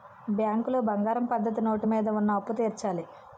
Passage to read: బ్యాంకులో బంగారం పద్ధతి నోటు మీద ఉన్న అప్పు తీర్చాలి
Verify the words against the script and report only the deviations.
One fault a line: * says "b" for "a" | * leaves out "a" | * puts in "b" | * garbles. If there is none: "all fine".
all fine